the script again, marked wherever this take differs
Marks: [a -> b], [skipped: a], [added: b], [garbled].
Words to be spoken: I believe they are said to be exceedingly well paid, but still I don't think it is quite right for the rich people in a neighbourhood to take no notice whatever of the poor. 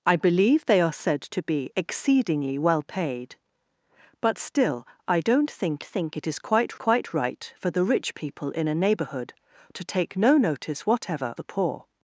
I believe they are said to be exceedingly well paid, but still I don't think [added: think] it is quite [added: quite] right for the rich people in a neighbourhood to take no notice whatever [skipped: of] the poor.